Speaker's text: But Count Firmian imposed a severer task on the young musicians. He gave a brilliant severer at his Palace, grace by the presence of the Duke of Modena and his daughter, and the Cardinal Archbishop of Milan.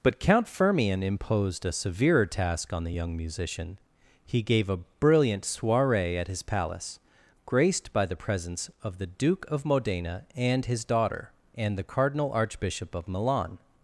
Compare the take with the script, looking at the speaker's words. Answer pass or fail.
fail